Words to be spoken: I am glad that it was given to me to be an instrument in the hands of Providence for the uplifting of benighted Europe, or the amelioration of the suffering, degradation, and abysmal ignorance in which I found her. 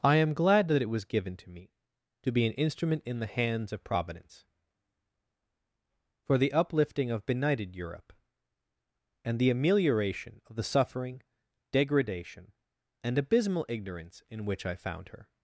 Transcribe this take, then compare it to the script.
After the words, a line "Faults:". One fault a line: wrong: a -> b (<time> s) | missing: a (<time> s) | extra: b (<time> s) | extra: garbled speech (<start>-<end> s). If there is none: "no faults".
I am glad that it was given to me to be an instrument in the hands of Providence for the uplifting of benighted Europe, and the amelioration of the suffering, degradation, and abysmal ignorance in which I found her.
Faults:
wrong: or -> and (9.2 s)